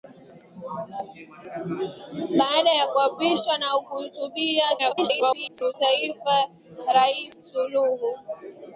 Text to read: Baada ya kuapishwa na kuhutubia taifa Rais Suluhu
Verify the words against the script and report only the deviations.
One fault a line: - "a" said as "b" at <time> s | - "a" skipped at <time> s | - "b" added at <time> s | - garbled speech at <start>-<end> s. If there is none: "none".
- garbled speech at 4.8-5.7 s